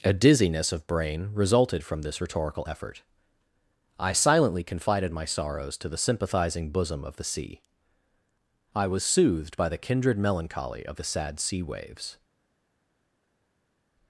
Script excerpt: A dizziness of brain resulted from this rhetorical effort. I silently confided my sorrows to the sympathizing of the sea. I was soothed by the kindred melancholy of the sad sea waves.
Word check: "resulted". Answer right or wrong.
right